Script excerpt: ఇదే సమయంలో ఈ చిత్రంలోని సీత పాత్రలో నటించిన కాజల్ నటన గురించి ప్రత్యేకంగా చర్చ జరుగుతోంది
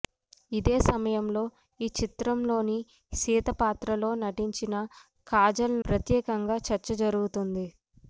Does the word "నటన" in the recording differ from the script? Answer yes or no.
yes